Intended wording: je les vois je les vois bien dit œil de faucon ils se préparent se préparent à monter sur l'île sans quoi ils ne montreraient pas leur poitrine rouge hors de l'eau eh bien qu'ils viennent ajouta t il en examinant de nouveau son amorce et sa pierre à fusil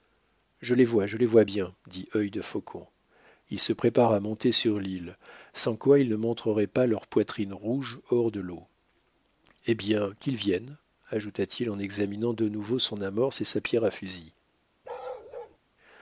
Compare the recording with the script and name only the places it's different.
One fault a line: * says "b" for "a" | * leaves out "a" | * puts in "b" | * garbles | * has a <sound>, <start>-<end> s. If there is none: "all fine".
* leaves out "se préparent"
* has a bark, 14.8-15.6 s